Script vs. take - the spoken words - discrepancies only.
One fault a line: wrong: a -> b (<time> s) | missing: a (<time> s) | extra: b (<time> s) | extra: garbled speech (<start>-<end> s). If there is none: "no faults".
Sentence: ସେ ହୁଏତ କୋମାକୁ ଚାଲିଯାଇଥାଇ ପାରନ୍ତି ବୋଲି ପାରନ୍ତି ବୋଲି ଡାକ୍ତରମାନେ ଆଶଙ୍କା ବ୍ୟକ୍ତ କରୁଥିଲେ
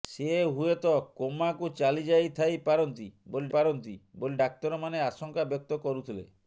no faults